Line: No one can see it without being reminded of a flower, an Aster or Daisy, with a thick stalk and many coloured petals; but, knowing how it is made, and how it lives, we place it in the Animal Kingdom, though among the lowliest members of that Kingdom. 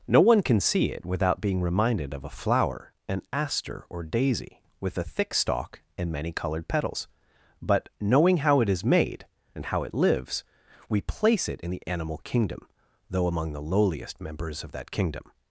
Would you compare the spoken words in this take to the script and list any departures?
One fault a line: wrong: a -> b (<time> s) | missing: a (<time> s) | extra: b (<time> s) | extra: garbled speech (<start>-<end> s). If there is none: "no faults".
no faults